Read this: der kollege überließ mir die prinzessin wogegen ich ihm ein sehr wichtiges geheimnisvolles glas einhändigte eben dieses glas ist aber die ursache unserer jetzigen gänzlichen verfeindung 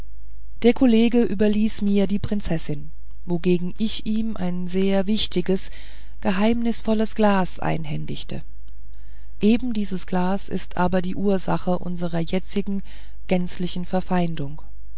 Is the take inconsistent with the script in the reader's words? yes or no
no